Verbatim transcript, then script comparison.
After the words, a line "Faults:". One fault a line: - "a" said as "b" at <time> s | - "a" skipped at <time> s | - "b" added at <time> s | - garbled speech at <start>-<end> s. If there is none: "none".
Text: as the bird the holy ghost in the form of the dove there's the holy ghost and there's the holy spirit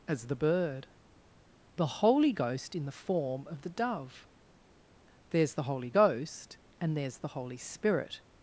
as the bird the holy ghost in the form of the dove there's the holy ghost and there's the holy spirit
Faults:
none